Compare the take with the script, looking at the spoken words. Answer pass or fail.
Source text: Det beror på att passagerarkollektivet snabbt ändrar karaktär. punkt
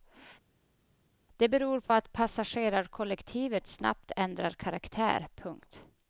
pass